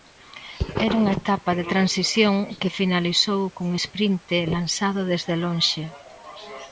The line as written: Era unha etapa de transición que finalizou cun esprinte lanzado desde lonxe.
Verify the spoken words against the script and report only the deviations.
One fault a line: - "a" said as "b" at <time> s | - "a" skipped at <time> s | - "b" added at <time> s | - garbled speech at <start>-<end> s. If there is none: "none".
none